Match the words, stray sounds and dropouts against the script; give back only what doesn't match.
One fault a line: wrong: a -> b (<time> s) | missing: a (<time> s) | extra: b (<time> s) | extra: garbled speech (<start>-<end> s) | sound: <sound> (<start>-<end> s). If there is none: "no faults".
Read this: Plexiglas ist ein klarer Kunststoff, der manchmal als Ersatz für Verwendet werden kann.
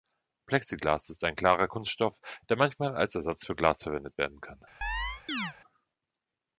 extra: Glas (3.6 s)
sound: chirp (4.8-5.5 s)